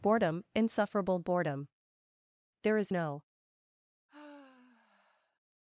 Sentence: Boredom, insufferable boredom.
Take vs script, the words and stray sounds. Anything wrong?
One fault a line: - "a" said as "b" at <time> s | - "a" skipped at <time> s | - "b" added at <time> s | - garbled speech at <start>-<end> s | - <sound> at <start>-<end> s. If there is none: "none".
- "There is no" added at 2.6 s
- sigh at 4.1-5.4 s